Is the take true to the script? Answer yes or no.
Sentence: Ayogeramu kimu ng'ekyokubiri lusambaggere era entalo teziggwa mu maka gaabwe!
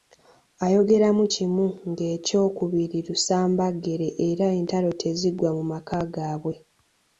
yes